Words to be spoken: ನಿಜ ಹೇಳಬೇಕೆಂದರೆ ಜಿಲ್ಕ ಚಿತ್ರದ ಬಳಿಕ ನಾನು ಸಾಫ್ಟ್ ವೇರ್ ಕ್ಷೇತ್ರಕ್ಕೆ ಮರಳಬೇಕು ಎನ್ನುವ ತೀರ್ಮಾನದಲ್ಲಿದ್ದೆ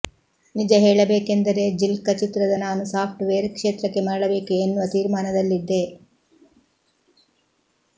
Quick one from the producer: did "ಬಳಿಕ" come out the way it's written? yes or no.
no